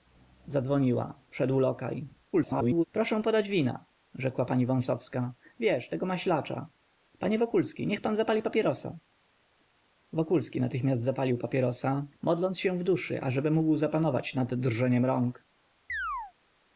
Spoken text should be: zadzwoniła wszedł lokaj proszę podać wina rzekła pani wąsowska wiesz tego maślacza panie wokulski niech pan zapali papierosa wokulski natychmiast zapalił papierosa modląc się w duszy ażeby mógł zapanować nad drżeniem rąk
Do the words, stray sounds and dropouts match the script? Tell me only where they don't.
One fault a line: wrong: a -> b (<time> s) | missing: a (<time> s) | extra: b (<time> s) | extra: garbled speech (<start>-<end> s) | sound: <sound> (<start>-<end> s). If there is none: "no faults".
extra: garbled speech (2.3-2.8 s)
sound: chirp (15.9-16.3 s)